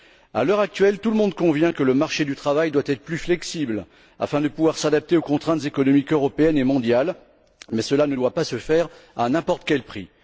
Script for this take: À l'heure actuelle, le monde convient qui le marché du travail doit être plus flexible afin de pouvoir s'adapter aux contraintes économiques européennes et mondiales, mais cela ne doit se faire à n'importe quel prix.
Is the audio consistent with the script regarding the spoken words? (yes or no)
no